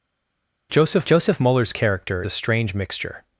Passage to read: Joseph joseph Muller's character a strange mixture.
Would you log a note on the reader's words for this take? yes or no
no